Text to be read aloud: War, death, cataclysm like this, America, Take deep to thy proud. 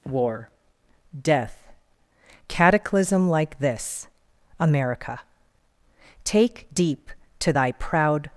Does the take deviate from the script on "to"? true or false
false